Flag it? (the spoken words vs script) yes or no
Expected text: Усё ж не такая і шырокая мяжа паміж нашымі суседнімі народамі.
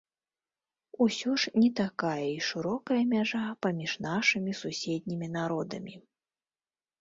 no